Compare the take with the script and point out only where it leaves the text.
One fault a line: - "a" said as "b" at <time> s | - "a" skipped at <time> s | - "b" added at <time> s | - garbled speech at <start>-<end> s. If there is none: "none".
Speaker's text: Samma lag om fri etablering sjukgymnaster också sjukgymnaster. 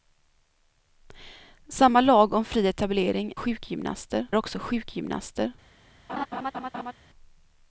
none